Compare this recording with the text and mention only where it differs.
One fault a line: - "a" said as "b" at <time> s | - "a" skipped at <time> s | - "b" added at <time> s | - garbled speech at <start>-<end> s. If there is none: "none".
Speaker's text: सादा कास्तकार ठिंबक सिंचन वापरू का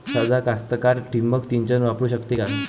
- "शकते" added at 2.1 s